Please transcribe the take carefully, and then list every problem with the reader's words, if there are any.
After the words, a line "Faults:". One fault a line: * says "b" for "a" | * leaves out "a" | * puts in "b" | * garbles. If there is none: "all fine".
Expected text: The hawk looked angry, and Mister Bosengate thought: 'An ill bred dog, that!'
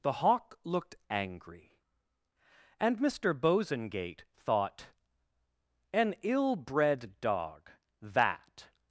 The hawk looked angry, and Mister Bosengate thought: 'An ill bred dog, that!'
Faults:
all fine